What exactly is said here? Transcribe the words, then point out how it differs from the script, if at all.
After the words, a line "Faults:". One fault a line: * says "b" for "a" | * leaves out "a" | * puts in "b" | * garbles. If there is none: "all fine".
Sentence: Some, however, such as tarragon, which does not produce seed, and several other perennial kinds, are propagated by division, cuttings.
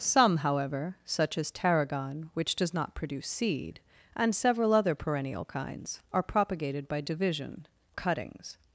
Some, however, such as tarragon, which does not produce seed, and several other perennial kinds, are propagated by division, cuttings.
Faults:
all fine